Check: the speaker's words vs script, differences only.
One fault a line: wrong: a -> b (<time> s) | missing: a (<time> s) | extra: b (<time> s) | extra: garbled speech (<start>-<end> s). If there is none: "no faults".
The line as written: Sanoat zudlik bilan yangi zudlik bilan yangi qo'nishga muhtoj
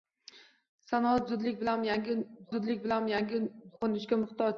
no faults